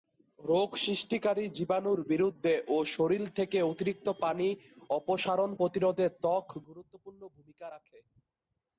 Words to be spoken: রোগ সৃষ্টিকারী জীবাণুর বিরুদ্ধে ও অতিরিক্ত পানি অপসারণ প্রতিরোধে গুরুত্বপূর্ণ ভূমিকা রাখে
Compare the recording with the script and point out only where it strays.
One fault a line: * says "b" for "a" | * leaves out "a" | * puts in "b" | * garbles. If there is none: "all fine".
* puts in "শরীর থেকে"
* puts in "ত্বক"